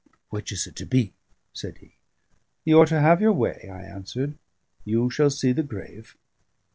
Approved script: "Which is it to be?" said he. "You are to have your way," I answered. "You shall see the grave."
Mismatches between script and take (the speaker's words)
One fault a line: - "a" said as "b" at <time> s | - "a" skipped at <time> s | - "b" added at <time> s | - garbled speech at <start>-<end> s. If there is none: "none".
none